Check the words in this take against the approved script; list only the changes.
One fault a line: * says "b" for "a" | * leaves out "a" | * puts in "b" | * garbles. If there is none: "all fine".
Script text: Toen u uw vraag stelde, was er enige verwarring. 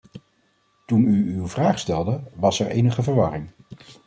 all fine